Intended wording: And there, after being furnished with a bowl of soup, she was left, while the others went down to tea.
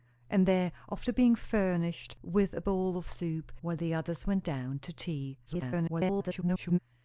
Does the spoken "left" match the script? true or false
false